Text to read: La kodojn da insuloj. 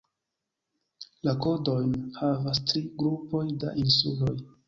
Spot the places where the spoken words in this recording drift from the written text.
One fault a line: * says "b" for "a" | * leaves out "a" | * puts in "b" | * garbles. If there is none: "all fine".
* puts in "havas tri grupoj"